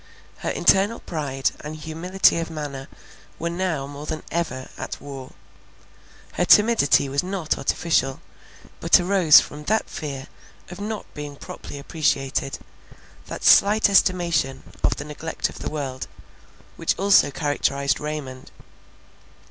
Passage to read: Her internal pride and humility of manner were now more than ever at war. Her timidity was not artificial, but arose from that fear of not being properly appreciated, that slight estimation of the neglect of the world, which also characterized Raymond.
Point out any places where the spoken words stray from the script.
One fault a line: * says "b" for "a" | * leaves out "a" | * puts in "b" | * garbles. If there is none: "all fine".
all fine